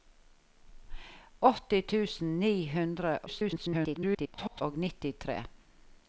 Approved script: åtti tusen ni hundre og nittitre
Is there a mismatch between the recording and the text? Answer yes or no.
yes